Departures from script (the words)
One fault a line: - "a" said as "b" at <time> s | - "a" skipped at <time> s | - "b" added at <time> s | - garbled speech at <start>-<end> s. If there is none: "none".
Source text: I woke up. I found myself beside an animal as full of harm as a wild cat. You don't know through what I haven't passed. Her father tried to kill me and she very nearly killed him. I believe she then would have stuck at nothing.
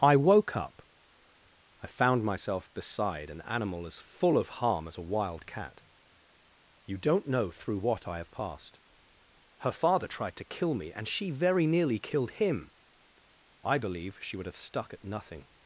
- "haven't" said as "have" at 8.2 s
- "then" skipped at 14.3 s